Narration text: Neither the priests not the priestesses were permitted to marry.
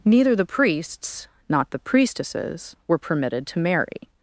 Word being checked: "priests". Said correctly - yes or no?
yes